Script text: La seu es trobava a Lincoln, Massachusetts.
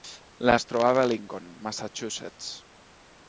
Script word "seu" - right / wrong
wrong